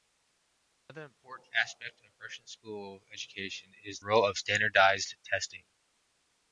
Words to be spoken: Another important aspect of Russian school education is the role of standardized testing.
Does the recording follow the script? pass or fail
fail